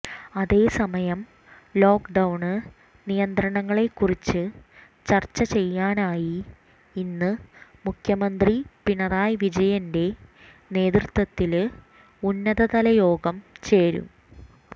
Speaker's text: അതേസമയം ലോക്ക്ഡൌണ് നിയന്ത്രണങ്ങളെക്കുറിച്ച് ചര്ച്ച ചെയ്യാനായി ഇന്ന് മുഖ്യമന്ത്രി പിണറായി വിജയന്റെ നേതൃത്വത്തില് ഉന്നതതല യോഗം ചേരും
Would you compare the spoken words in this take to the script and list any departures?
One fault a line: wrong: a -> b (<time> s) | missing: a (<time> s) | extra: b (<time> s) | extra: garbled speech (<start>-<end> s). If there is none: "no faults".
no faults